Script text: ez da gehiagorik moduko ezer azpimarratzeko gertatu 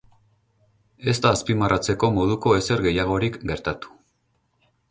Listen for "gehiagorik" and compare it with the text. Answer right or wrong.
wrong